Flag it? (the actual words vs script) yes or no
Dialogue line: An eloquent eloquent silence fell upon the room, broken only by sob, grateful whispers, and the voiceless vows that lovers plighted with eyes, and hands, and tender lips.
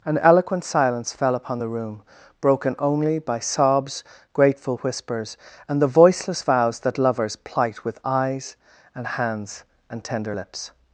yes